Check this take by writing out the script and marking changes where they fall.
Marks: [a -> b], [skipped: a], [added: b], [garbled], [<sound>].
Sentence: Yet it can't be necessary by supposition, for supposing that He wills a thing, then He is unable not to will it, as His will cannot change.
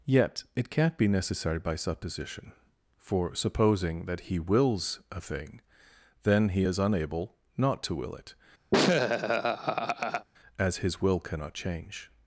Yet it can't be necessary by supposition, for supposing that He wills a thing, then He is unable not to will it, [laugh] as His will cannot change.